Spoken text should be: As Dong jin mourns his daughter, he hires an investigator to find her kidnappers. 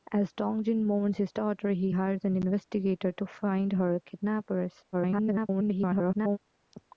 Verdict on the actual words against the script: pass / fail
fail